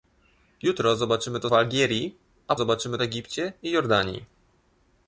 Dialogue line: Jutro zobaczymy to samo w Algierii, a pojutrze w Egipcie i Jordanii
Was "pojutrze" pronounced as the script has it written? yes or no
no